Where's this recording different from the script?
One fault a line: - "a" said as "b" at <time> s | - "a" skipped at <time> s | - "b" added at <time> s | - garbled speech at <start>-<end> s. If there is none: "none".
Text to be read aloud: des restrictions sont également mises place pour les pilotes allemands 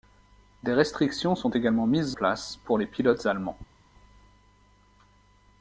none